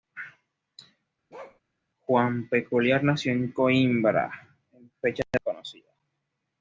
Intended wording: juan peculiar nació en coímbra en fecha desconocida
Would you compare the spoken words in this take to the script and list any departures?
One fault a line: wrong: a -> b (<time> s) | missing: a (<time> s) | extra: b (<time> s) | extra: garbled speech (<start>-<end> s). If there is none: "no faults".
no faults